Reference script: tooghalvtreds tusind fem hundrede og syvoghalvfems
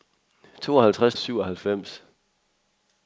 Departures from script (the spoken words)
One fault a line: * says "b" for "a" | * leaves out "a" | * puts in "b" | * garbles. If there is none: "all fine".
* leaves out "tusind fem hundrede"